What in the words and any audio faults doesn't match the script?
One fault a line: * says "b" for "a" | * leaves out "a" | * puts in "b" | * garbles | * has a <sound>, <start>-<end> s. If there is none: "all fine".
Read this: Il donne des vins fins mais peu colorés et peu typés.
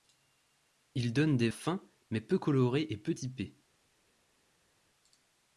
* leaves out "vins"